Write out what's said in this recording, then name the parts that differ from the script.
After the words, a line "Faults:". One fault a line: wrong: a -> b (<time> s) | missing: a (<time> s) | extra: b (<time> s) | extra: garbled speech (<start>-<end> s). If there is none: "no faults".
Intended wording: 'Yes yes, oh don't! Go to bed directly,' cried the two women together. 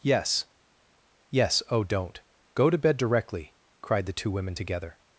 'Yes yes, oh don't! Go to bed directly,' cried the two women together.
Faults:
no faults